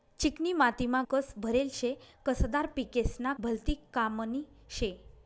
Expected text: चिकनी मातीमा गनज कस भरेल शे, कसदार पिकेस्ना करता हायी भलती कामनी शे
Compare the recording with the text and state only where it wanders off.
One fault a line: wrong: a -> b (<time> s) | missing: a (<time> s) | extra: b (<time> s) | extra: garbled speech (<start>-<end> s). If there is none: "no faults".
missing: गनज (1.0 s)
missing: करता हायी (3.3 s)